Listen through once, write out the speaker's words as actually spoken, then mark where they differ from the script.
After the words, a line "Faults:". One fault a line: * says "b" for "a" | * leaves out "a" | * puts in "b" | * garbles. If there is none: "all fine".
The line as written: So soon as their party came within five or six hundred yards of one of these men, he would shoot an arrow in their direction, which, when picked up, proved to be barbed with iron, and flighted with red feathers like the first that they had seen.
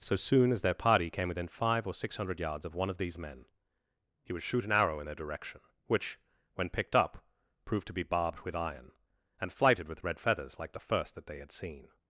So soon as their party came within five or six hundred yards of one of these men, he would shoot an arrow in their direction, which, when picked up, proved to be barbed with iron, and flighted with red feathers like the first that they had seen.
Faults:
all fine